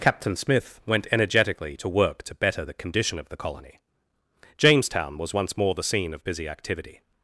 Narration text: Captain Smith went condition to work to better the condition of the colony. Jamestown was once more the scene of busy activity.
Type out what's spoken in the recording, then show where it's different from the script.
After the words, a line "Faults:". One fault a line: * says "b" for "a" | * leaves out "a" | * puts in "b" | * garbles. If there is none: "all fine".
Captain Smith went energetically to work to better the condition of the colony. Jamestown was once more the scene of busy activity.
Faults:
* says "energetically" for "condition"